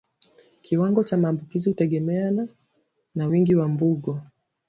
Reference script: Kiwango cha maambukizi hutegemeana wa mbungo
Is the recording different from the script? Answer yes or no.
yes